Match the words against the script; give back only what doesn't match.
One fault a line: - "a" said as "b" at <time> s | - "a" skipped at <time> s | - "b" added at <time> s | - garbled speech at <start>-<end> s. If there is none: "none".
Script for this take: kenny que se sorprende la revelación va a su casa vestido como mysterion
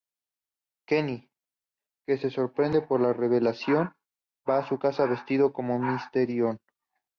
- "por" added at 2.8 s